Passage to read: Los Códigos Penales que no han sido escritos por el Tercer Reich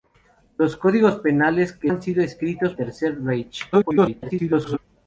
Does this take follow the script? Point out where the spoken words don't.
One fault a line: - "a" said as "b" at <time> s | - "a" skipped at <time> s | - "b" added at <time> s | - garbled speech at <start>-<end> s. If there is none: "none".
- "no" skipped at 1.9 s
- "por el" skipped at 2.7 s
- garbled speech at 3.7-4.8 s